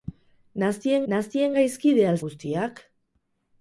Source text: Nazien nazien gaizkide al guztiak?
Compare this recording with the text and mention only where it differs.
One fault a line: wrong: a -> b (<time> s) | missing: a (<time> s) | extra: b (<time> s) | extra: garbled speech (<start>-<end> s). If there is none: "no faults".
no faults